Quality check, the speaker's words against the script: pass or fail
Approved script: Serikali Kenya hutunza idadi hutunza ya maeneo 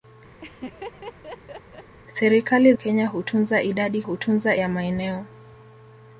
pass